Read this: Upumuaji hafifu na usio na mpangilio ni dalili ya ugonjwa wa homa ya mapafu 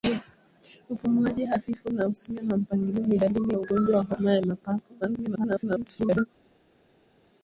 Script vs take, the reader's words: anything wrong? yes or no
yes